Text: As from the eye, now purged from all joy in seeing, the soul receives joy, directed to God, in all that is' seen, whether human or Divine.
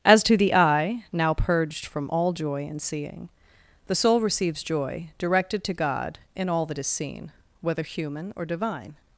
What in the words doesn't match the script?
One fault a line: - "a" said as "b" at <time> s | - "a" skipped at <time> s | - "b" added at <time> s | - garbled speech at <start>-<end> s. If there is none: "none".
- "from" said as "to" at 0.2 s